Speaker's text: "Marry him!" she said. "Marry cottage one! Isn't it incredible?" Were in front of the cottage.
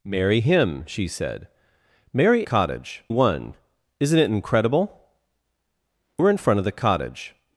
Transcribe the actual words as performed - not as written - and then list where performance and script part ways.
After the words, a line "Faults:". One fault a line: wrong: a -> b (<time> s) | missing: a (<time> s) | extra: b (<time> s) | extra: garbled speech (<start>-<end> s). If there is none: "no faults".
"Marry him!" she said. "Marry cottage one! Isn't it incredible?" Were in front of the cottage.
Faults:
no faults